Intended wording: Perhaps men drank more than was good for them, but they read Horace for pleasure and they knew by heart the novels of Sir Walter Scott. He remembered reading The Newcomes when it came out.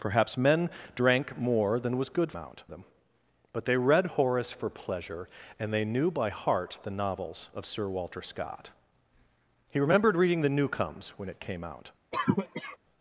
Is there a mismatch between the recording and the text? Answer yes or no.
yes